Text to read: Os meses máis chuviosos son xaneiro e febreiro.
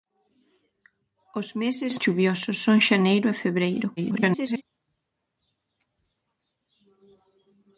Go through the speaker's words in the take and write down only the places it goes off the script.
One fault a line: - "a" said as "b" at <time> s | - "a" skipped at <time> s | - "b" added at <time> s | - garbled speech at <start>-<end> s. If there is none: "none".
- "máis" skipped at 1.9 s
- garbled speech at 4.0-4.6 s